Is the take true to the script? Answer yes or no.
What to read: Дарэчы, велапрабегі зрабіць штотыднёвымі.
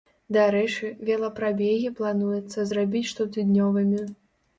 no